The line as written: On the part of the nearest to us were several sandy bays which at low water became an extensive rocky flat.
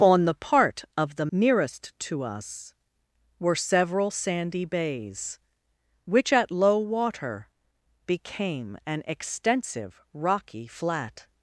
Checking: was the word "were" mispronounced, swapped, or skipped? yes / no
no